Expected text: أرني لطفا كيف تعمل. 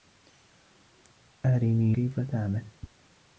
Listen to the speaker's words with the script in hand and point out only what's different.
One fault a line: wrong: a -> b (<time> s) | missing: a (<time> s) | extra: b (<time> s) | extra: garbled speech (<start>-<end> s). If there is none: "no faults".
missing: لطفا (1.9 s)